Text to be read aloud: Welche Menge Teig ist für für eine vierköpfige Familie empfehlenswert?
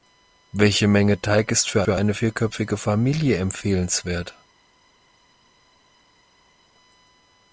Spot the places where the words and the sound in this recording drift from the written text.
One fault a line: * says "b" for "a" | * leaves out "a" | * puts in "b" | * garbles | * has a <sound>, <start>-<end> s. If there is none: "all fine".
all fine